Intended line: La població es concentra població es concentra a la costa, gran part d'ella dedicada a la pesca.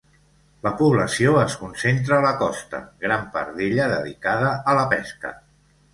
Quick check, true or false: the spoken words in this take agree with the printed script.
false